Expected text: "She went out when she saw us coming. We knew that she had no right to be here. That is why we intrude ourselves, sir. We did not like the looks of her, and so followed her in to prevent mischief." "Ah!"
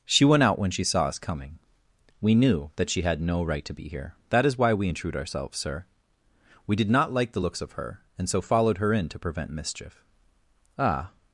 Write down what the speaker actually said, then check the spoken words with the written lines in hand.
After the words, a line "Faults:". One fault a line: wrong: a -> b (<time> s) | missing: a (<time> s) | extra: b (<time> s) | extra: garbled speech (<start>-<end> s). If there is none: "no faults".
"She went out when she saw us coming. We knew that she had no right to be here. That is why we intrude ourselves, sir. We did not like the looks of her, and so followed her in to prevent mischief." "Ah!"
Faults:
no faults